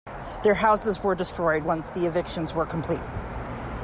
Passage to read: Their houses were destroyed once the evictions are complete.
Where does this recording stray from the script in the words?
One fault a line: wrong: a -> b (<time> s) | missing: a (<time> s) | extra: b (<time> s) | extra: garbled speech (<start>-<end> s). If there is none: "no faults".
wrong: are -> were (2.5 s)